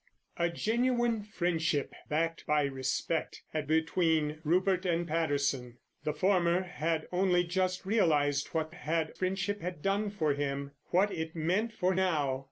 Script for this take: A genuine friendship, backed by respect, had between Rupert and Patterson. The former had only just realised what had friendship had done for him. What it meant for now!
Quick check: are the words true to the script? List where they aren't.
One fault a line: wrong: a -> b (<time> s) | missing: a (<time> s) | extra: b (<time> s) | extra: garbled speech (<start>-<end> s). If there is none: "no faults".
no faults